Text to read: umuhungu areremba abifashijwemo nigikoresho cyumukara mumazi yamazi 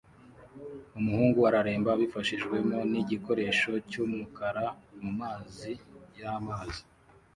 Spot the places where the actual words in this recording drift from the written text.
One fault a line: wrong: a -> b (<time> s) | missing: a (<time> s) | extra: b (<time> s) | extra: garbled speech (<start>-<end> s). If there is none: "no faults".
no faults